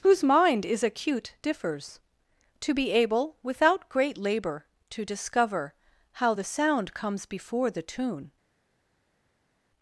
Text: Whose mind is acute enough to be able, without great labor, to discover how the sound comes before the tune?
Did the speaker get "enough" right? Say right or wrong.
wrong